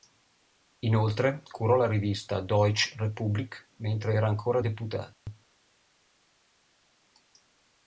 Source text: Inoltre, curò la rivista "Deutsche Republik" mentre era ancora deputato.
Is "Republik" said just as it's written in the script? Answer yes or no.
yes